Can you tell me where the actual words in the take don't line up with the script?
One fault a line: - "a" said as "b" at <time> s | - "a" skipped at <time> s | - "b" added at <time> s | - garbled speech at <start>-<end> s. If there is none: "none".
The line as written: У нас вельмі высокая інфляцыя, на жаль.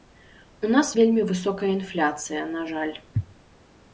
none